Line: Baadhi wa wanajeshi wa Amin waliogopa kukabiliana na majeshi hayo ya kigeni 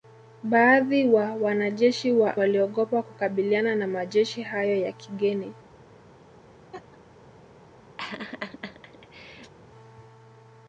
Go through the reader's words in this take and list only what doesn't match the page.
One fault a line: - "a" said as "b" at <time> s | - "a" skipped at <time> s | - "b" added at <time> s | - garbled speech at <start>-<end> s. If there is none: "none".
- "Amin" skipped at 2.4 s